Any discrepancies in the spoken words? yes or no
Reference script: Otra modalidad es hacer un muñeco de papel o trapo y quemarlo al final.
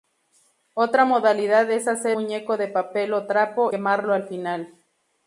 yes